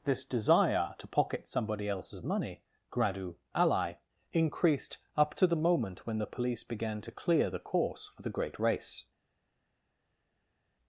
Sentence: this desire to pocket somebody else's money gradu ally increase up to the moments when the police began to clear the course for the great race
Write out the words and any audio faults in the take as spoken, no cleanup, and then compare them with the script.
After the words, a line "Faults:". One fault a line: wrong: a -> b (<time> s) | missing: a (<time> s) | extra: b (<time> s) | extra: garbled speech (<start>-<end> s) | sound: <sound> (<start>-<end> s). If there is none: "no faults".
this desire to pocket somebody else's money gradu ally increased up to the moment when the police began to clear the course for the great race
Faults:
wrong: increase -> increased (4.3 s)
wrong: moments -> moment (5.6 s)